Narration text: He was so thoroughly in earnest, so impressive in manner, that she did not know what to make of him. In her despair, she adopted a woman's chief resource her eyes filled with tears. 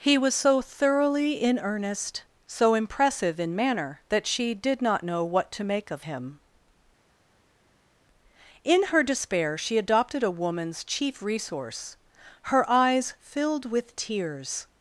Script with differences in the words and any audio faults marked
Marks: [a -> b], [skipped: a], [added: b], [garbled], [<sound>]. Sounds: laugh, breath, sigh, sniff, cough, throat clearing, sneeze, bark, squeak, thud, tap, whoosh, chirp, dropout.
He was so thoroughly in earnest, so impressive in manner, that she did not know what to make of him. In her despair, she adopted a woman's chief resource her eyes filled with tears.